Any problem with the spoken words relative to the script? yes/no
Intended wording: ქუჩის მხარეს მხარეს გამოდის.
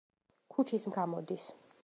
yes